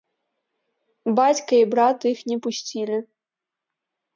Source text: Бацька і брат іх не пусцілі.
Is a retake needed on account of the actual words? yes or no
no